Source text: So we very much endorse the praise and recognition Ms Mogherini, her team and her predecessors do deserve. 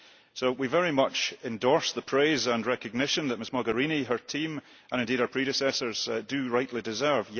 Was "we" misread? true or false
false